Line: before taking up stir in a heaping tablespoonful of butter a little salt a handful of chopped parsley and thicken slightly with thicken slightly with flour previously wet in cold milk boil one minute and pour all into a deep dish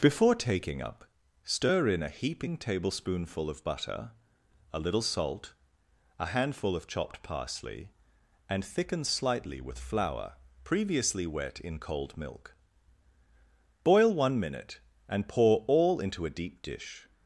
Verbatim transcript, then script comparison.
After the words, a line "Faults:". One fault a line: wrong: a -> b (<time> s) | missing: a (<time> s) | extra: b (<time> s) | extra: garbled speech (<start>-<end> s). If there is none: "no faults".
before taking up stir in a heaping tablespoonful of butter a little salt a handful of chopped parsley and thicken slightly with flour previously wet in cold milk boil one minute and pour all into a deep dish
Faults:
missing: thicken slightly with (9.8 s)